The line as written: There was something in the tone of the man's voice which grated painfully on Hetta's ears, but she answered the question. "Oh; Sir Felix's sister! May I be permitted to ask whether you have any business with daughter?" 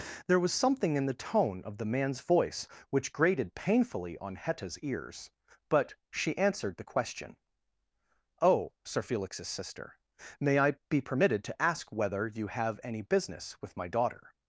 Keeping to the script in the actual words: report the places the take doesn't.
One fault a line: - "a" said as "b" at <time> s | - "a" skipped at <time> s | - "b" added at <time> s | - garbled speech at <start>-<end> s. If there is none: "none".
- "my" added at 13.8 s